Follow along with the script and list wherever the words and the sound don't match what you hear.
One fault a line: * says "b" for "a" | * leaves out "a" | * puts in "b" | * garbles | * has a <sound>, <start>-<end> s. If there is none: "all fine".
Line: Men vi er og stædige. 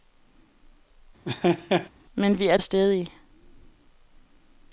* has a laugh, 1.2-1.9 s